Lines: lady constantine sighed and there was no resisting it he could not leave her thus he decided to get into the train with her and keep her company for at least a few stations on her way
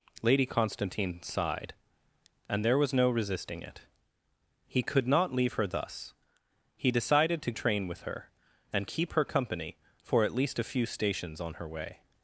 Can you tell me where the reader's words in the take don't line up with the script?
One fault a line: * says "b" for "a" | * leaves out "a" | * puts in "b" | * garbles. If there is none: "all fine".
* leaves out "get into the"